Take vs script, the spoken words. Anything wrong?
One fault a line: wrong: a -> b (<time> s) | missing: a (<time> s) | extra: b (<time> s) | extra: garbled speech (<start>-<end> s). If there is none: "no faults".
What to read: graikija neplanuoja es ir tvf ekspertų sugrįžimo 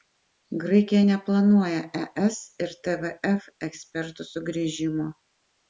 no faults